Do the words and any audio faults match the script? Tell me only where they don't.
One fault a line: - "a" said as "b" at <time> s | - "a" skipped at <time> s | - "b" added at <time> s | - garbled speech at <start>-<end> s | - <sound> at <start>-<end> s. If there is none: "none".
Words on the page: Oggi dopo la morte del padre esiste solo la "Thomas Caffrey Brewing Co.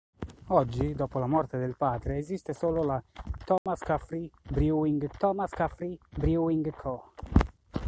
- dropout at 3.6-3.7 s
- "thomas Caffrey Brewing" added at 5.2 s